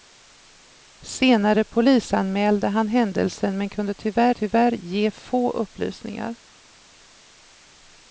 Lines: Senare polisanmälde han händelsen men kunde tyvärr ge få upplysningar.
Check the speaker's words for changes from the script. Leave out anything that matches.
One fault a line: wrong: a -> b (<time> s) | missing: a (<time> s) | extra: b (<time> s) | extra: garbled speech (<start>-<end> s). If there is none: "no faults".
extra: tyvärr (4.3 s)